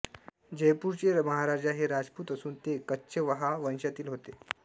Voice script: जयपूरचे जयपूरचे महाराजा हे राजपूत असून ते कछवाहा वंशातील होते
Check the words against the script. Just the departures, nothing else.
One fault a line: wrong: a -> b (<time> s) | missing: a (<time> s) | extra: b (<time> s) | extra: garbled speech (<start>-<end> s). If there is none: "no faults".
missing: जयपूरचे (1.1 s)